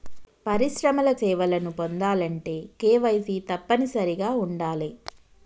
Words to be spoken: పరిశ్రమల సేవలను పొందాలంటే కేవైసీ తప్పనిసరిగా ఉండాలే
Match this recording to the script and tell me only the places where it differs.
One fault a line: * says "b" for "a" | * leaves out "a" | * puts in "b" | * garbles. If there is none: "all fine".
all fine